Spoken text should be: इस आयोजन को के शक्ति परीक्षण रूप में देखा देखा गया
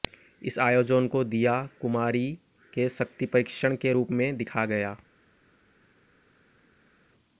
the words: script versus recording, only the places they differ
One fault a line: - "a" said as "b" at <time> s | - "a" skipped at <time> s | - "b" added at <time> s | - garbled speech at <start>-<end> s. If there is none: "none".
- "दीया कुमारी" added at 1.2 s
- "के" added at 3.8 s
- "देखा" skipped at 4.6 s